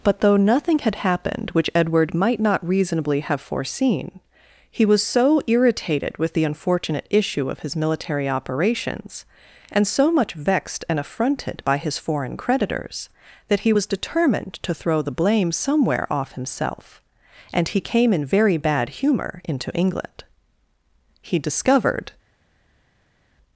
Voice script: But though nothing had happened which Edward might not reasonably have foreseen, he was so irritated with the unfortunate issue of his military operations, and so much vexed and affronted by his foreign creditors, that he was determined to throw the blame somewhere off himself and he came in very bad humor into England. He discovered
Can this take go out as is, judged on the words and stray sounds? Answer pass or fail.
pass